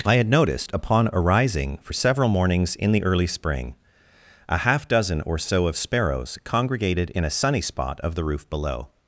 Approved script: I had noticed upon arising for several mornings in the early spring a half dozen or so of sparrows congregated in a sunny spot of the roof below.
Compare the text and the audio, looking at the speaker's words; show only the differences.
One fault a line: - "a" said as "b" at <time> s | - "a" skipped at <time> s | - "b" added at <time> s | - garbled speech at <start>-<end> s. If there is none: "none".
none